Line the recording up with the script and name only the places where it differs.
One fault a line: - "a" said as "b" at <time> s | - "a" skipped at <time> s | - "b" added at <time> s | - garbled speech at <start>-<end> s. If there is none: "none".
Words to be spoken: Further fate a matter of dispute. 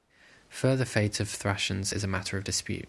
- "of Thracians is" added at 1.2 s